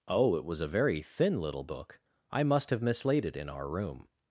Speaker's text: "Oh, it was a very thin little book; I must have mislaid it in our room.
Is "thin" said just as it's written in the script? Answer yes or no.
yes